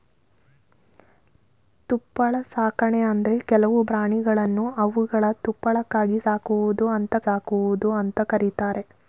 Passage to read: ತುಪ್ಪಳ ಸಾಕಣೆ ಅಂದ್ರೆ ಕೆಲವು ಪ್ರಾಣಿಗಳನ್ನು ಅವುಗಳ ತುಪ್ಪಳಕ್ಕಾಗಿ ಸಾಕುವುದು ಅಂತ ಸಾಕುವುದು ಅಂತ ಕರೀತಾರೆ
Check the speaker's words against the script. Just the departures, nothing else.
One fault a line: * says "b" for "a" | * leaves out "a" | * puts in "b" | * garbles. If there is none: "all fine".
all fine